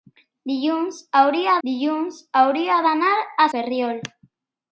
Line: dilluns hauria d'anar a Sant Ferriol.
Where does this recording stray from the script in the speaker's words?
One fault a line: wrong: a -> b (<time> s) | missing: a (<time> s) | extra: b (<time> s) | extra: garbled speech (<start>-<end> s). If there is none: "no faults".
extra: dilluns hauria (1.7 s)
missing: Sant (3.5 s)